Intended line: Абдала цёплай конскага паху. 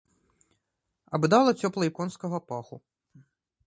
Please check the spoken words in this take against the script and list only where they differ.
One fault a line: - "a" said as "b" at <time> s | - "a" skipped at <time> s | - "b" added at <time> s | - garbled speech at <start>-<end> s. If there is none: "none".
none